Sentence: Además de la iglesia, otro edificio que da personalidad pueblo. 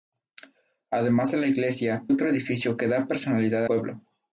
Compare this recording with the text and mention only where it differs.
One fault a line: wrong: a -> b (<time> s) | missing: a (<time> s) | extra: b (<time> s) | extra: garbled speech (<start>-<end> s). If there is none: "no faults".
no faults